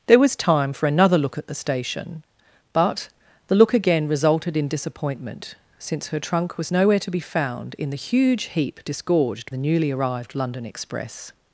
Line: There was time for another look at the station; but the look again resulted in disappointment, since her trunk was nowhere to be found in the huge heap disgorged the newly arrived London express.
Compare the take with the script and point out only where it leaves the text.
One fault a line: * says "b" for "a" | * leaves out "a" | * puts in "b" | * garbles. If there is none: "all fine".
all fine